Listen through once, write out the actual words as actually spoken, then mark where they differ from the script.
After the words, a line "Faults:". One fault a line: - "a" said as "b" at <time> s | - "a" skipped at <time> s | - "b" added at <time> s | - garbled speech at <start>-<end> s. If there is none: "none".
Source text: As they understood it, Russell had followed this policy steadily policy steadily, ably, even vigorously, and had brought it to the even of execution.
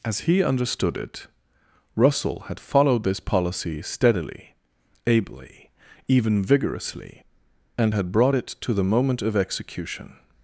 As he understood it, Russell had followed this policy steadily, ably, even vigorously, and had brought it to the moment of execution.
Faults:
- "they" said as "he" at 0.2 s
- "policy steadily" skipped at 4.5 s
- "even" said as "moment" at 8.8 s